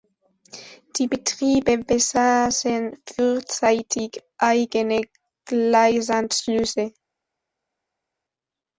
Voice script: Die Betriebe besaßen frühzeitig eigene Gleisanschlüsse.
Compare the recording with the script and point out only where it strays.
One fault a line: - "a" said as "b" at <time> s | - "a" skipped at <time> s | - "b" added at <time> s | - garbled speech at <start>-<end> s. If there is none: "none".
none